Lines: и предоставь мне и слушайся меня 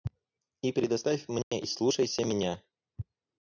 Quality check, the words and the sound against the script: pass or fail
fail